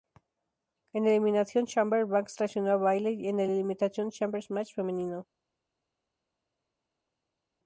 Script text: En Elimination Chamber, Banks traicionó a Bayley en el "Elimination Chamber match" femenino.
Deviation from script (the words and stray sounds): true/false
false